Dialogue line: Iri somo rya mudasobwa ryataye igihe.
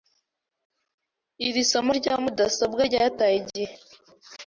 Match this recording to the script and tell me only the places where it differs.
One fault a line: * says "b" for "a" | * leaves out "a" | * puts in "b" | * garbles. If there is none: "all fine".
all fine